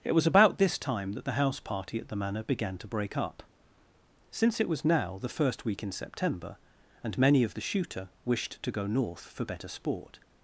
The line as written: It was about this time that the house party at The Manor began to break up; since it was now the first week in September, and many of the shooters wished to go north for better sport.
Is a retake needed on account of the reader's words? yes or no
yes